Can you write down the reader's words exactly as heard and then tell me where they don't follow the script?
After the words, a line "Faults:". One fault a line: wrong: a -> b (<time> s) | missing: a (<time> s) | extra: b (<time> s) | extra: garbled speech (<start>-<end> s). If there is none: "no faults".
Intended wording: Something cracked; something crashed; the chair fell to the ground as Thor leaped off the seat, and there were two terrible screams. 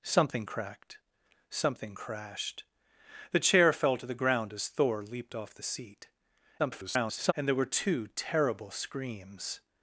Something cracked; something crashed; the chair fell to the ground as Thor leaped off the seat, [garbled] and there were two terrible screams.
Faults:
extra: garbled speech (6.6-7.3 s)